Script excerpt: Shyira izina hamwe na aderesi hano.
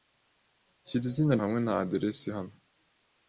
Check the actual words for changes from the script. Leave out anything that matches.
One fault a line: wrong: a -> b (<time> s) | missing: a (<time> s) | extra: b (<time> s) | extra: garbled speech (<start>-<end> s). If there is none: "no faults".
no faults